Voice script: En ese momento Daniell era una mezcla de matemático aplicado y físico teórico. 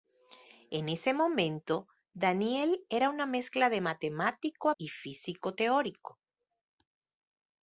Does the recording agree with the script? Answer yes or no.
no